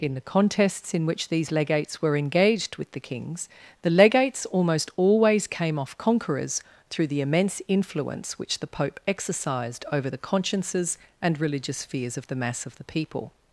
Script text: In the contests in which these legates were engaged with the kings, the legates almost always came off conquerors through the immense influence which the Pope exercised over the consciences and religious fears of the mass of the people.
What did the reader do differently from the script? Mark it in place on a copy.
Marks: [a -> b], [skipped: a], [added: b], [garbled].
In the contests in which these legates were engaged with the kings, the legates almost always came off conquerors through the immense influence which the Pope exercised over the consciences and religious fears of the mass of the people.